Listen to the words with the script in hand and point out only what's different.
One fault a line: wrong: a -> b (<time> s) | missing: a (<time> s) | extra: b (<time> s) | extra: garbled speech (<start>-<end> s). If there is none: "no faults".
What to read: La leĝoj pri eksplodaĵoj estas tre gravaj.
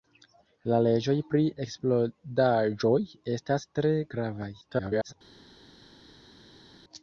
extra: garbled speech (4.6-5.1 s)